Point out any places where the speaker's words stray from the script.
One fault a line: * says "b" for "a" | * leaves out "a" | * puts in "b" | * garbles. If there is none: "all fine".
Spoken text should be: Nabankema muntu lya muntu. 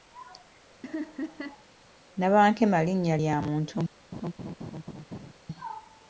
* says "linnya" for "muntu"